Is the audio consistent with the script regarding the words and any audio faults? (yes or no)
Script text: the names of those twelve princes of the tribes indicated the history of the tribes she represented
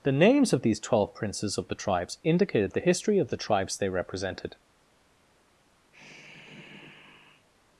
no